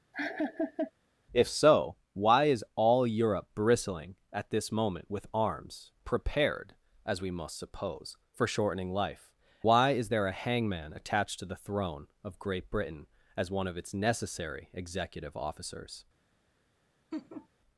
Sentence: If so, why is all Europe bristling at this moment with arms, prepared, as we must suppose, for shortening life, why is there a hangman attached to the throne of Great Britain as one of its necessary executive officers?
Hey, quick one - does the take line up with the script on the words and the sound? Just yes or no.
no